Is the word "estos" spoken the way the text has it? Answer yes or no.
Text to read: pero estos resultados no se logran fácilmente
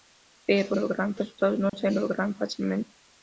no